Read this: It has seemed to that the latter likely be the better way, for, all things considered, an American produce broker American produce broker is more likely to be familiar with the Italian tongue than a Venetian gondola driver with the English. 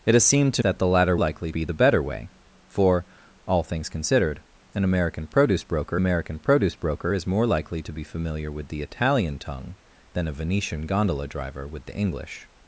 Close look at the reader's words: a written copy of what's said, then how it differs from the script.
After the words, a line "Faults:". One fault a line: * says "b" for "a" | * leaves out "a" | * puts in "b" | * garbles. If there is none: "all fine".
It has seemed to that the latter likely be the better way, for, all things considered, an American produce broker American produce broker is more likely to be familiar with the Italian tongue than a Venetian gondola driver with the English.
Faults:
all fine